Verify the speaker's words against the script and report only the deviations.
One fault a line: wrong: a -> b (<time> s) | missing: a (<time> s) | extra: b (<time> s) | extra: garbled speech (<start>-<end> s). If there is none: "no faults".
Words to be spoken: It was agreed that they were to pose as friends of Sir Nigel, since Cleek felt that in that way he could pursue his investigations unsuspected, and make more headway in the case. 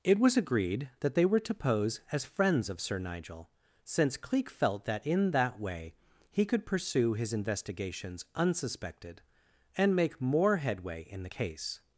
no faults